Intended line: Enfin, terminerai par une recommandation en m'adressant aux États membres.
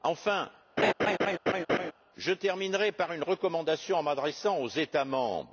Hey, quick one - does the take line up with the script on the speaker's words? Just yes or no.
no